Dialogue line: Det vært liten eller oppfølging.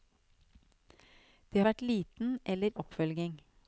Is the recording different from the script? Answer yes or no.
no